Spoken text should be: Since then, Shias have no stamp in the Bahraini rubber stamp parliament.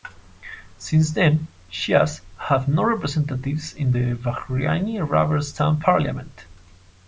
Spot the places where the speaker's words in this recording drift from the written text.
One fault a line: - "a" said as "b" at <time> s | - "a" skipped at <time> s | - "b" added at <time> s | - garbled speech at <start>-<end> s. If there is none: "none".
- "stamp" said as "representatives" at 2.8 s